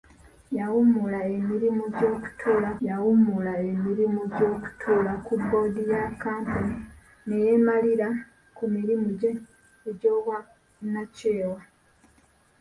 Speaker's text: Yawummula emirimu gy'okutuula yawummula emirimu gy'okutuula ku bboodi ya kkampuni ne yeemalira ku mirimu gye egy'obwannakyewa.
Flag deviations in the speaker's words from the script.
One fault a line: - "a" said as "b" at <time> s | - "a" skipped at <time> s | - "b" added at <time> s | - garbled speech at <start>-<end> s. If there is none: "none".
none